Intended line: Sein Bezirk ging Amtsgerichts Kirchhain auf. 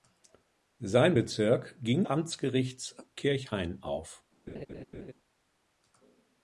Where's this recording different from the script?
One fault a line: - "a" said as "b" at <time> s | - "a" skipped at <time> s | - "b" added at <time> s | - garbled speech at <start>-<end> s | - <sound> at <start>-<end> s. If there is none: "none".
- laugh at 4.5-5.1 s